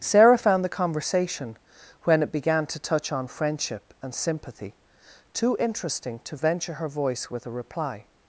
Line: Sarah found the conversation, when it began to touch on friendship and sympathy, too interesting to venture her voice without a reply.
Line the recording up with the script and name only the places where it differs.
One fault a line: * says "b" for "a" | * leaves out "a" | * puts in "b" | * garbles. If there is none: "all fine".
* says "with" for "without"